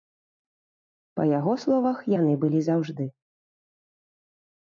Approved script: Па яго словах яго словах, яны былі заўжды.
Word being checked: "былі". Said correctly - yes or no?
yes